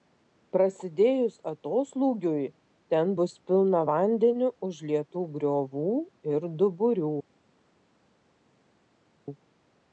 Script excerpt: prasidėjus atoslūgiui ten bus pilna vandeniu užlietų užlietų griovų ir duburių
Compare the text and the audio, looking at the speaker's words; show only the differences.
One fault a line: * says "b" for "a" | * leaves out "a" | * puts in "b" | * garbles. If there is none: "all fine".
* leaves out "užlietų"